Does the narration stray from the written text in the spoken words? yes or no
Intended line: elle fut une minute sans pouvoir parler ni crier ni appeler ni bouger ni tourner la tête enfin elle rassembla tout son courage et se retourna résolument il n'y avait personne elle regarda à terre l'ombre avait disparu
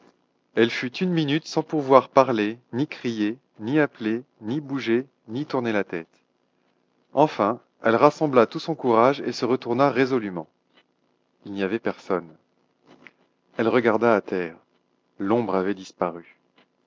no